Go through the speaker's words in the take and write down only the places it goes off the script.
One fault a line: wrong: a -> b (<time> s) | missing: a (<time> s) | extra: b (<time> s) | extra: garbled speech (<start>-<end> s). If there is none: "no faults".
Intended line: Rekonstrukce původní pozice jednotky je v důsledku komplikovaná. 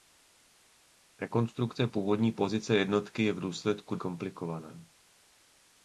no faults